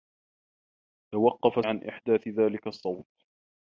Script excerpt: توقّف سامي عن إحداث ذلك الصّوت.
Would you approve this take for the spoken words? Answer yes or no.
no